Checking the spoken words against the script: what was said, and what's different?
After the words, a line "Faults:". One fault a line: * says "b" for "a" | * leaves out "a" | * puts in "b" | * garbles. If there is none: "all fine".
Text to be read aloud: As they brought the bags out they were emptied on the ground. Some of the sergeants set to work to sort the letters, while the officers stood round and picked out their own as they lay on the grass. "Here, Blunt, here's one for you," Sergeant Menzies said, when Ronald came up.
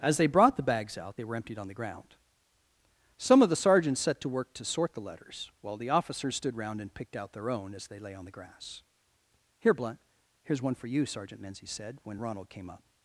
As they brought the bags out they were emptied on the ground. Some of the sergeants set to work to sort the letters, while the officers stood round and picked out their own as they lay on the grass. "Here, Blunt, here's one for you," Sergeant Menzies said, when Ronald came up.
Faults:
all fine